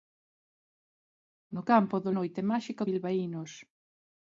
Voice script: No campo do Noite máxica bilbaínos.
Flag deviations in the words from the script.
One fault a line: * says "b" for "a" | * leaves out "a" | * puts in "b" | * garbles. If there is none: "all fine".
all fine